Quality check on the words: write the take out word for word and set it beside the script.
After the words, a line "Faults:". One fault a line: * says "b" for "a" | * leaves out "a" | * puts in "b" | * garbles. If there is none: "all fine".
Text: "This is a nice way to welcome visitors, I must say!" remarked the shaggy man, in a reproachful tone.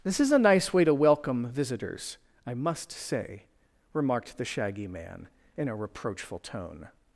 "This is a nice way to welcome visitors, I must say!" remarked the shaggy man, in a reproachful tone.
Faults:
all fine